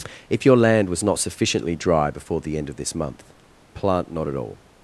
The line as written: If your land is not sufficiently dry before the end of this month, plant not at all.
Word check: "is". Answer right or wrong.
wrong